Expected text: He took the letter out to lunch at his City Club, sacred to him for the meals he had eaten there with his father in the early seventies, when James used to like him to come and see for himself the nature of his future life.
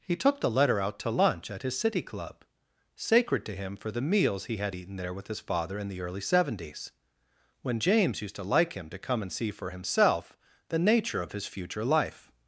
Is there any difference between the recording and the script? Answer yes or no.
no